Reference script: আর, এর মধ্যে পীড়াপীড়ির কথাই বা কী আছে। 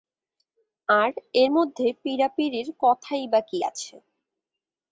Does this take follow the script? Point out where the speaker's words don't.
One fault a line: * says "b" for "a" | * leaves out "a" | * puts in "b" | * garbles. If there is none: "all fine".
all fine